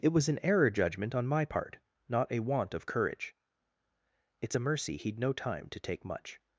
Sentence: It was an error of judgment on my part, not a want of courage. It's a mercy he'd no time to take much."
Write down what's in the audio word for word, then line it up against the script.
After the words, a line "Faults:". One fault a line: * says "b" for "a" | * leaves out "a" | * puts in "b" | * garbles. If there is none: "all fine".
It was an error judgment on my part, not a want of courage. It's a mercy he'd no time to take much."
Faults:
* leaves out "of"